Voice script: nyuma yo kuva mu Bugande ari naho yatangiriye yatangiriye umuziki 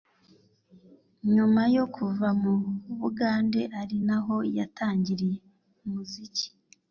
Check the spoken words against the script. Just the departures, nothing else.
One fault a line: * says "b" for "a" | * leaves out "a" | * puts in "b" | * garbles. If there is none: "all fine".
* leaves out "yatangiriye"